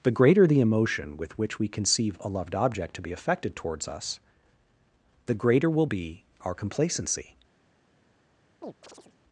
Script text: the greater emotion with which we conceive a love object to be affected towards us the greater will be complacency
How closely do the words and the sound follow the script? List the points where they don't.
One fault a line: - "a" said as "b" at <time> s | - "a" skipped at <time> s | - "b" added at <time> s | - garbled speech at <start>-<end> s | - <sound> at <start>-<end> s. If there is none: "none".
- "the" added at 0.5 s
- "love" said as "loved" at 2.3 s
- "our" added at 6.4 s
- chirp at 8.6-9.2 s